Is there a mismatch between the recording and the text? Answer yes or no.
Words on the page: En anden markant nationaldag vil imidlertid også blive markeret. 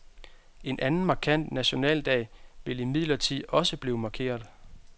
no